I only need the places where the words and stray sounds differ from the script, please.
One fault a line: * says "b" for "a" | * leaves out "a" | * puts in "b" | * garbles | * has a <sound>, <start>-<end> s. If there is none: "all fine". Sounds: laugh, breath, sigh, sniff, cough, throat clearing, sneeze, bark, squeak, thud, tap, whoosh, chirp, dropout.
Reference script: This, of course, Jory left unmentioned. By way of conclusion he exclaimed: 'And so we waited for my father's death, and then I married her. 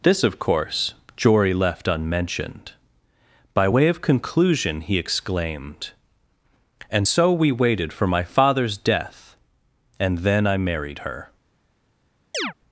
* has a chirp, 12.3-12.5 s